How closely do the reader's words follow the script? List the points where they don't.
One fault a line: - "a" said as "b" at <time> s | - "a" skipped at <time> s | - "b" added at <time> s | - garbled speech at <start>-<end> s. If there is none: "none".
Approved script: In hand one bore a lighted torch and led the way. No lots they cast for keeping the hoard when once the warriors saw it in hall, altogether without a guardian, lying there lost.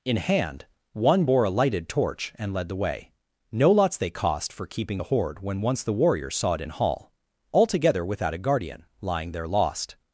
- "cast" said as "cost" at 4.1 s